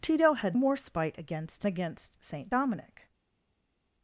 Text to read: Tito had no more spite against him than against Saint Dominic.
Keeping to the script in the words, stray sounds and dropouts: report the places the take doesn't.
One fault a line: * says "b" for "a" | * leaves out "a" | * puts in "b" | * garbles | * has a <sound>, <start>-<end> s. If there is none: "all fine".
* leaves out "no"
* leaves out "him than"